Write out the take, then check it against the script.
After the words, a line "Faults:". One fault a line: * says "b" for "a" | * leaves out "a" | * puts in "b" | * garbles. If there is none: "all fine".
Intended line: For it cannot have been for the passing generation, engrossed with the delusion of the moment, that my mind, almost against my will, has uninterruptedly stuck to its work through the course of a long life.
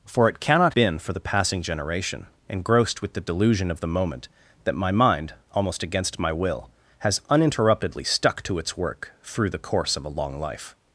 For it cannot been for the passing generation, engrossed with the delusion of the moment, that my mind, almost against my will, has uninterruptedly stuck to its work through the course of a long life.
Faults:
* leaves out "have"